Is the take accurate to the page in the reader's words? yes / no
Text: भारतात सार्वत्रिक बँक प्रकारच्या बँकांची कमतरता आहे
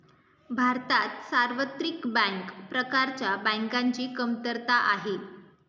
yes